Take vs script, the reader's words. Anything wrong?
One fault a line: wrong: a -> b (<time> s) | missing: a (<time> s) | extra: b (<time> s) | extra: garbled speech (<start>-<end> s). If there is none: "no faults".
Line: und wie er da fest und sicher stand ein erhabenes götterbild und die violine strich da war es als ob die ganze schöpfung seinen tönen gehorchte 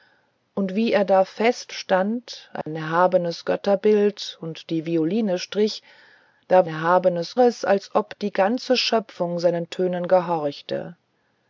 missing: und sicher (1.8 s)
wrong: war -> erhabenes (6.7 s)